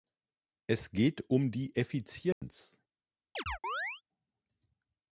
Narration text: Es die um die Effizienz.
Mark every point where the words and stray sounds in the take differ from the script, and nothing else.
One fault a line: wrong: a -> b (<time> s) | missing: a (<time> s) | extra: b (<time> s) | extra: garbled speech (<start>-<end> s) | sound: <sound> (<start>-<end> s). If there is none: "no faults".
wrong: die -> geht (0.9 s)
sound: dropout (2.3-2.4 s)
sound: chirp (3.4-4.0 s)